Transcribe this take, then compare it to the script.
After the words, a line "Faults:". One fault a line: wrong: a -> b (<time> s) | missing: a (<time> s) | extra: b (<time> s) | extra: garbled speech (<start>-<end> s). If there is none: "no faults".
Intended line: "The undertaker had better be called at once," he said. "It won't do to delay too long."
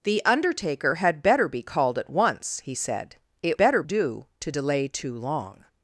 "The undertaker had better be called at once," he said. "It better do to delay too long."
Faults:
wrong: won't -> better (3.6 s)